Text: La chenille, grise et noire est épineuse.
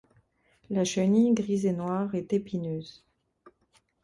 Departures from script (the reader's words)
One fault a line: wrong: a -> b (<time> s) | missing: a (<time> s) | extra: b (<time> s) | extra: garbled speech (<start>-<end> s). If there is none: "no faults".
no faults